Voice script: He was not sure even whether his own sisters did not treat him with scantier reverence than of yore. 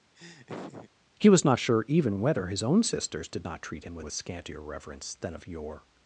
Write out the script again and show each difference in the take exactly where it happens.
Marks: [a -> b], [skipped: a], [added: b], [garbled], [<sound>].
[laugh] He was not sure even whether his own sisters did not treat him with [added: with] scantier reverence than of yore.